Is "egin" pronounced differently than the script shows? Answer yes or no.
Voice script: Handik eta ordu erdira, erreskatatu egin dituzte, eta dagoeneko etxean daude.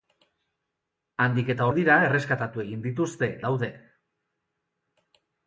no